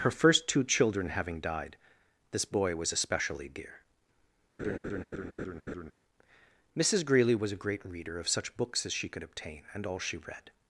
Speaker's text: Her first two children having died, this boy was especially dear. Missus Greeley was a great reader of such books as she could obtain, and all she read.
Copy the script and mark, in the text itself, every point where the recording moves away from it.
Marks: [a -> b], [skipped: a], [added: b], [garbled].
Her first two children having died, this boy was especially dear. Missus Greeley was a great reader of such books as she could obtain, and all she read.